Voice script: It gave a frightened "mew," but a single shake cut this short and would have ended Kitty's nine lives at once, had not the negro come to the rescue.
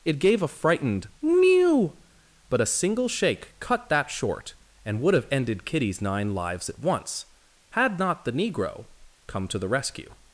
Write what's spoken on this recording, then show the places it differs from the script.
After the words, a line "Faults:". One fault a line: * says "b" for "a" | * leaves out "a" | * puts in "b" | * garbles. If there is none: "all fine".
It gave a frightened "mew," but a single shake cut that short and would have ended Kitty's nine lives at once, had not the negro come to the rescue.
Faults:
* says "that" for "this"